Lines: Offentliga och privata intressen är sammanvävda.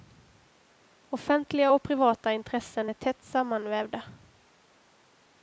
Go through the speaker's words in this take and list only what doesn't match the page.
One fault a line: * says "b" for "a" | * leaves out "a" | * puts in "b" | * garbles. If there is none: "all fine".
* puts in "tätt"